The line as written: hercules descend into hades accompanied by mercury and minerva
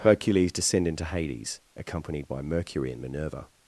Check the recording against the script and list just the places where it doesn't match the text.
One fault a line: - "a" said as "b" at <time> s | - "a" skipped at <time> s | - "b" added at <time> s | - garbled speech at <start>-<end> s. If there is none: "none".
none